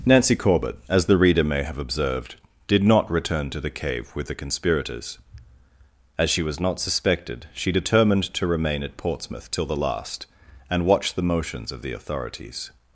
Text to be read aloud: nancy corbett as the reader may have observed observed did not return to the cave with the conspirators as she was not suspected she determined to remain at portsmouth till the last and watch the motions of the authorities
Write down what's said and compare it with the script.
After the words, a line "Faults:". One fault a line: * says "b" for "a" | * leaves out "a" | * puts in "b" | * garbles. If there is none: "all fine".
nancy corbett as the reader may have observed did not return to the cave with the conspirators as she was not suspected she determined to remain at portsmouth till the last and watch the motions of the authorities
Faults:
* leaves out "observed"